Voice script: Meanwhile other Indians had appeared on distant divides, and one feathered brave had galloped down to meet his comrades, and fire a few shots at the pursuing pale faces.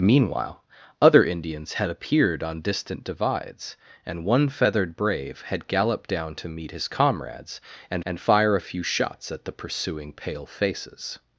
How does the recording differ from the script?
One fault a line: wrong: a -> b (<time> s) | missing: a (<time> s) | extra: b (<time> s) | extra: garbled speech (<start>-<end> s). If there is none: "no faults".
extra: and (8.1 s)